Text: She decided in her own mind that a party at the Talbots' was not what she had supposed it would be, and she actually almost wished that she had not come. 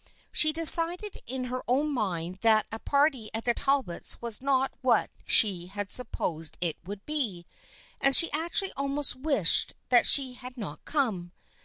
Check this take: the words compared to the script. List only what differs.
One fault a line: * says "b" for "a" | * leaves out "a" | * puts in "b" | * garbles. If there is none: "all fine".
all fine